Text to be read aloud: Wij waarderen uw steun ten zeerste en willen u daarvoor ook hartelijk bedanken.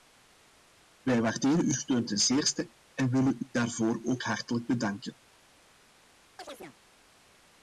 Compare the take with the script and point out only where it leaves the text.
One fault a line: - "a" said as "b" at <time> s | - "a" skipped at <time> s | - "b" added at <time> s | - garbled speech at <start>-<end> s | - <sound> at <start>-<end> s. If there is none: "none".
- chirp at 6.4-6.8 s